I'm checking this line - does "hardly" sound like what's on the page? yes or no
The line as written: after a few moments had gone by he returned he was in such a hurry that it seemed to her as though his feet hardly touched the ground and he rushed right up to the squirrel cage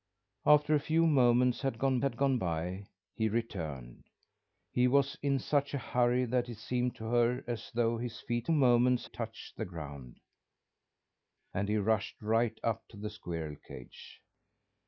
no